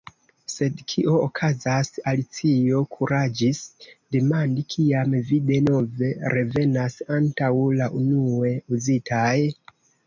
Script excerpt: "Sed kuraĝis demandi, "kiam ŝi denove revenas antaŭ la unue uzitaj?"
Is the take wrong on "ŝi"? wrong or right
wrong